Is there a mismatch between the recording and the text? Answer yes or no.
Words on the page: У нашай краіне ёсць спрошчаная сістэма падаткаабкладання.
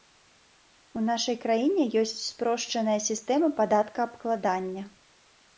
no